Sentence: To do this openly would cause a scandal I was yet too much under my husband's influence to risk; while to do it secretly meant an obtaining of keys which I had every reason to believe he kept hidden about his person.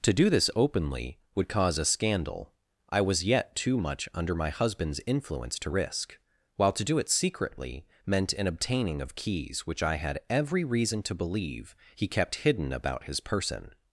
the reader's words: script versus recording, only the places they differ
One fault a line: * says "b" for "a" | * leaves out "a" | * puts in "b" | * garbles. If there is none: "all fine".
all fine